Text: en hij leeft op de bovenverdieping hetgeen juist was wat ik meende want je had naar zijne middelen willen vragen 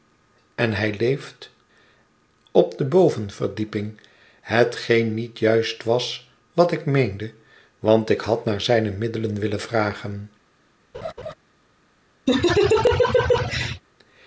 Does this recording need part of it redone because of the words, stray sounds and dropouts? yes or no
yes